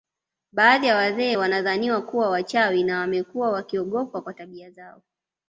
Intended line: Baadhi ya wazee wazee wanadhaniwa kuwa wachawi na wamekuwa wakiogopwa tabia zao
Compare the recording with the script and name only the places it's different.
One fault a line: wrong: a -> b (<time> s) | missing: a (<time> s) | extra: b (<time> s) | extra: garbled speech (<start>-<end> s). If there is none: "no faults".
missing: wazee (1.4 s)
extra: kwa (4.2 s)